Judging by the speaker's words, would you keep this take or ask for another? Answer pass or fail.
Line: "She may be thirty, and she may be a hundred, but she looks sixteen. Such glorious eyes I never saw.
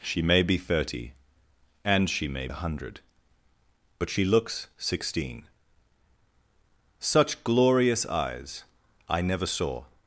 fail